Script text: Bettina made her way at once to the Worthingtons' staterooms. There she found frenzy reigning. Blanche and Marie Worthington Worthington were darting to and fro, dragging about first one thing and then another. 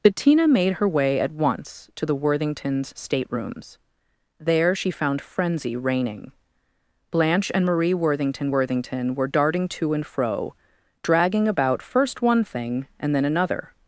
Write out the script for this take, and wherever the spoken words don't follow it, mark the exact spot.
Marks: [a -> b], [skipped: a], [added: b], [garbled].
Bettina made her way at once to the Worthingtons' staterooms. There she found frenzy reigning. Blanche and Marie Worthington Worthington were darting to and fro, dragging about first one thing and then another.